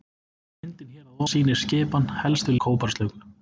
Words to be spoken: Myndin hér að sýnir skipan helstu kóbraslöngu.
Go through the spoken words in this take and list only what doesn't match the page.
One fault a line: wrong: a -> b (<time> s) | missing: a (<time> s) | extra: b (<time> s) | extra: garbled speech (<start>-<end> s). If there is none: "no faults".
no faults